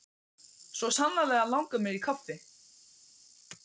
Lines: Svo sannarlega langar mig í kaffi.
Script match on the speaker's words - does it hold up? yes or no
yes